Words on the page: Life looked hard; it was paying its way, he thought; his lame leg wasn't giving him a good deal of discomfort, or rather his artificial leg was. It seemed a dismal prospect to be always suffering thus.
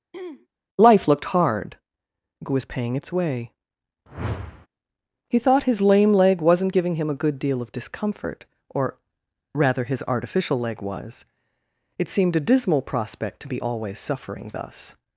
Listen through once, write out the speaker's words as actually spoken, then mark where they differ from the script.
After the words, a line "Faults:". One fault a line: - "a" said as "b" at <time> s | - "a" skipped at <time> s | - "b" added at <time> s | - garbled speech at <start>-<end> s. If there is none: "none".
Life looked hard; it was paying its way, he thought; his lame leg wasn't giving him a good deal of discomfort, or rather his artificial leg was. It seemed a dismal prospect to be always suffering thus.
Faults:
none